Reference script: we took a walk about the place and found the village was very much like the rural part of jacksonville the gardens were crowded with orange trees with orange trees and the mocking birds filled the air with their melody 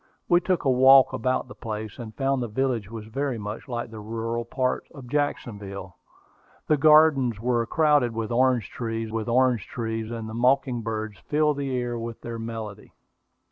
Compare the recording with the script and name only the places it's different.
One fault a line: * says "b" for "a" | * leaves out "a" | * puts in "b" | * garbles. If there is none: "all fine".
all fine